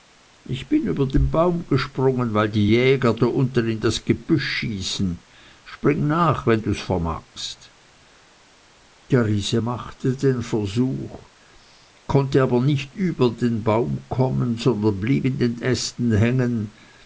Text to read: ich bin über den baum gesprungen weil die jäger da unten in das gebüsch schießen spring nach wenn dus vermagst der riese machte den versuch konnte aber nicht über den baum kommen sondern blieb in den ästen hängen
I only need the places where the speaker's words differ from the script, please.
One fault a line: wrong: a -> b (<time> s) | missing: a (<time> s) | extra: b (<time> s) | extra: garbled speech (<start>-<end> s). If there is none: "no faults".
no faults